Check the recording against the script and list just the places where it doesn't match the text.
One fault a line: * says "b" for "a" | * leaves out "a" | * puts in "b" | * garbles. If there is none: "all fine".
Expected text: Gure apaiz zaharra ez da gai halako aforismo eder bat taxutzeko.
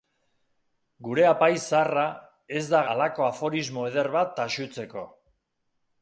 * leaves out "gai"